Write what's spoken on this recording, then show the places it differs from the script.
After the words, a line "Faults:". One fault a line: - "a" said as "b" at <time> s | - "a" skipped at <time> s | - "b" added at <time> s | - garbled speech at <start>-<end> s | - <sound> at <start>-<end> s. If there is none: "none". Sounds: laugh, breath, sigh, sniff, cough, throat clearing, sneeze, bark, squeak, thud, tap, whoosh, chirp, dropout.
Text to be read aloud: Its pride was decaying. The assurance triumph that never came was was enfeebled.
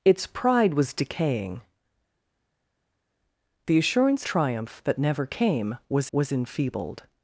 Its pride was decaying. The assurance triumph that never came was was enfeebled.
Faults:
none